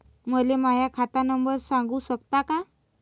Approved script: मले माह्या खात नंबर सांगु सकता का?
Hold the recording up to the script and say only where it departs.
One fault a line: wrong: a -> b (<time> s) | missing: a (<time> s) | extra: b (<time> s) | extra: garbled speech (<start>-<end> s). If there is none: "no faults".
no faults